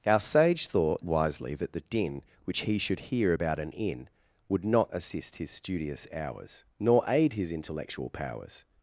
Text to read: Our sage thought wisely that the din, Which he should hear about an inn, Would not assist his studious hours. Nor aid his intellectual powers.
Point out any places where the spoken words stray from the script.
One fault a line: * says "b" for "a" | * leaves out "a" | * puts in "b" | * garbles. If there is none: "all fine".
all fine